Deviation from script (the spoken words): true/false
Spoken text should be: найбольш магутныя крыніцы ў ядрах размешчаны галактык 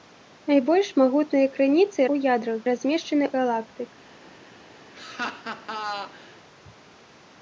false